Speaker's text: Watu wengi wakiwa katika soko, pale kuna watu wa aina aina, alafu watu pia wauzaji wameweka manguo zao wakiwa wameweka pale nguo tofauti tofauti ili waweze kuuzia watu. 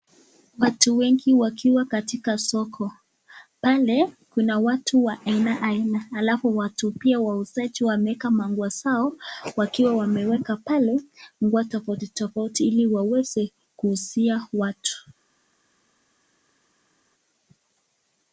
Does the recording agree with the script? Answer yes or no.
yes